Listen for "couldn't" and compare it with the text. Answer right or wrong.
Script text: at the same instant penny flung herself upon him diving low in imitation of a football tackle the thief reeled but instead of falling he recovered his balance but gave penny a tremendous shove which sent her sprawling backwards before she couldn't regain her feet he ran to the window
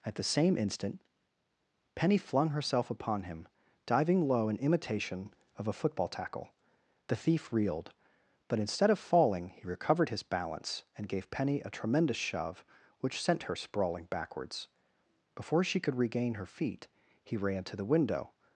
wrong